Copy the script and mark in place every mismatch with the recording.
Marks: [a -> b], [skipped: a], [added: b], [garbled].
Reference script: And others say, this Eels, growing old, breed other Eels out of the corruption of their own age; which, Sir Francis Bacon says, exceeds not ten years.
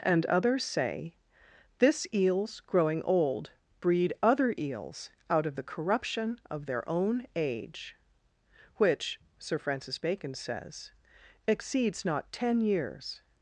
And others say, this Eels, growing old, breed other Eels out of the corruption of their own age; which, Sir Francis Bacon says, exceeds not ten years.